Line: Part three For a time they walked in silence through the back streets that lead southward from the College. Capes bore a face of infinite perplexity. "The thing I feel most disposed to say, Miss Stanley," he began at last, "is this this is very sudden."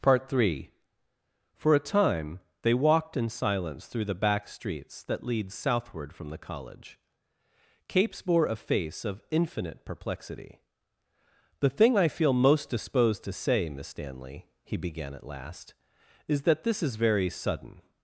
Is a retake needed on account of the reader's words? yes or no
yes